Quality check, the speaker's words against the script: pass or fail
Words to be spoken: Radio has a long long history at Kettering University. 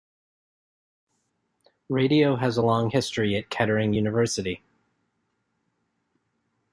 fail